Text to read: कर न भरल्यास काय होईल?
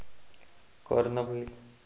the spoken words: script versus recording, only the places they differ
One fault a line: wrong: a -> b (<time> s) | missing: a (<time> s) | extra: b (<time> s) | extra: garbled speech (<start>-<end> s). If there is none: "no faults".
missing: भरल्यास काय (1.2 s)